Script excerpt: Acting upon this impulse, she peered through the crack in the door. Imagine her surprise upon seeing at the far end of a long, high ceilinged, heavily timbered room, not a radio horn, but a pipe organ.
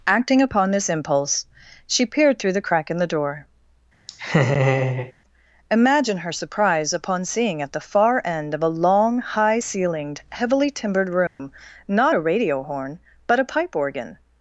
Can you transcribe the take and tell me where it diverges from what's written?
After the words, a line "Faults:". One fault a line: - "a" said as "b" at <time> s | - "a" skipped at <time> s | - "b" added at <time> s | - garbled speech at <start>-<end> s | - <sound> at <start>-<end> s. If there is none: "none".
Acting upon this impulse, she peered through the crack in the door. Imagine her surprise upon seeing at the far end of a long, high ceilinged, heavily timbered room, not a radio horn, but a pipe organ.
Faults:
- laugh at 4.1-5.1 s
- dropout at 11.3-11.4 s